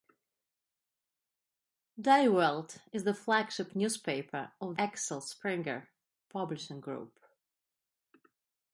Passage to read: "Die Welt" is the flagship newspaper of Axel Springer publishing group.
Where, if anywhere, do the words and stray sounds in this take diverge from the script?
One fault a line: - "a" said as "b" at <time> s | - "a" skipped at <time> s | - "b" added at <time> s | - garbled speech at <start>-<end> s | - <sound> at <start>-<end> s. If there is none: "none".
none